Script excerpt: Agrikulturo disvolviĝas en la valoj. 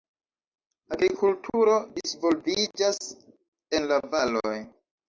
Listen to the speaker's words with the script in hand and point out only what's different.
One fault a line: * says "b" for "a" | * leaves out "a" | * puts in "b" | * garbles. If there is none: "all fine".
all fine